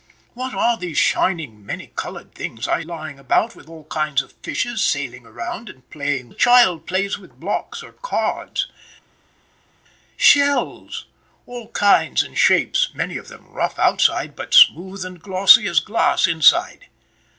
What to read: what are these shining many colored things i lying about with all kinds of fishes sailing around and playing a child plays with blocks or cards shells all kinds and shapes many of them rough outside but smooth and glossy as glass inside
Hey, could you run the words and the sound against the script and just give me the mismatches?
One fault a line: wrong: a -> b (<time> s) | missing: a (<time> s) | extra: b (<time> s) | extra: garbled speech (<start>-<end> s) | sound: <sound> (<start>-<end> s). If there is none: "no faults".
no faults